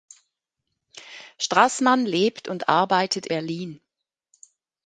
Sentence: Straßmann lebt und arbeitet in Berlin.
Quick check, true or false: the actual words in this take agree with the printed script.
false